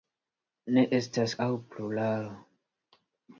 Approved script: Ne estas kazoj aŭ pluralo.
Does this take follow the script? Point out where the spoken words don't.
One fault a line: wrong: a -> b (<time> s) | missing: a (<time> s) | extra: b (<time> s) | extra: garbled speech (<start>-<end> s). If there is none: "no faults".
missing: kazoj (1.4 s)